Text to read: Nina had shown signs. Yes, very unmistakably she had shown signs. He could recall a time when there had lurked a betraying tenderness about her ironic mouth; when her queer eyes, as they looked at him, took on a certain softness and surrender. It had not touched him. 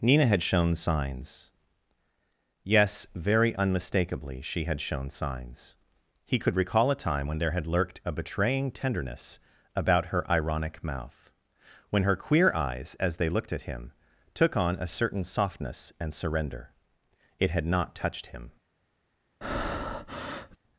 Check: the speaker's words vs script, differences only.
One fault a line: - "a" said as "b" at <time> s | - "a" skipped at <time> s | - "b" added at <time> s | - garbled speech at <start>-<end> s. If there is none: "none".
none